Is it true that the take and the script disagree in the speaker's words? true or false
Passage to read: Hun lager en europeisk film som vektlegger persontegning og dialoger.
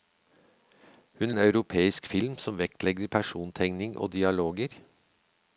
true